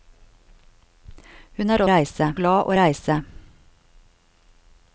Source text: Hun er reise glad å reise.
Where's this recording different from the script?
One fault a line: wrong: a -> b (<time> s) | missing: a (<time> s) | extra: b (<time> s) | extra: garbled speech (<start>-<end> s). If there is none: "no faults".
no faults